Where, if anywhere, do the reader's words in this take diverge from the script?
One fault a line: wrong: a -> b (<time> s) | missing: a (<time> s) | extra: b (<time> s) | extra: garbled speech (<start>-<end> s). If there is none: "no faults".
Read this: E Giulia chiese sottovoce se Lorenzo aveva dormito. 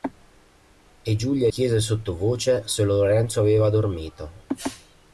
no faults